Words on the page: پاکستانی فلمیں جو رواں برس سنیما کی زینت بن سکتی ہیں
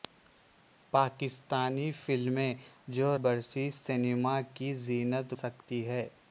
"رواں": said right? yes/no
no